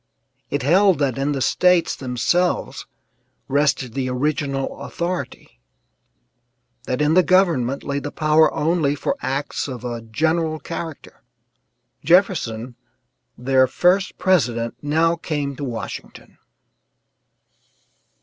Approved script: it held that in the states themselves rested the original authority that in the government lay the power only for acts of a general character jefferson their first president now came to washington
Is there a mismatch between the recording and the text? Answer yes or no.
no